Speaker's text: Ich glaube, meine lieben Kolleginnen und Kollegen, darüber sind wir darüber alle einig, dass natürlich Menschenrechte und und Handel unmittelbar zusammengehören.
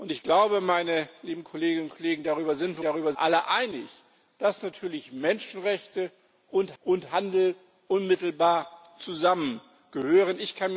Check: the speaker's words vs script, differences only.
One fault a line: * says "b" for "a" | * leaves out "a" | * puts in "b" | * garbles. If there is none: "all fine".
all fine